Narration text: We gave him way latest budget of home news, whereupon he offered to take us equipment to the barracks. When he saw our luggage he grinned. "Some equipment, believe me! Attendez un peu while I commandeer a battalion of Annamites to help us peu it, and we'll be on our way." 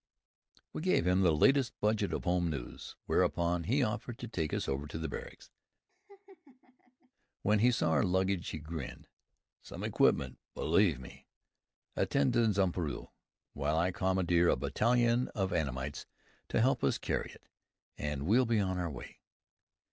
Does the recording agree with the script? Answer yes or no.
no